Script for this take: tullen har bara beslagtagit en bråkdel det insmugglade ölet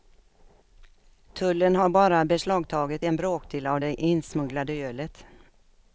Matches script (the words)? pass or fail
fail